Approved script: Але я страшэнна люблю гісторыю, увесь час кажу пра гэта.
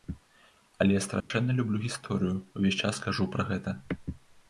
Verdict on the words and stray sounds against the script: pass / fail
fail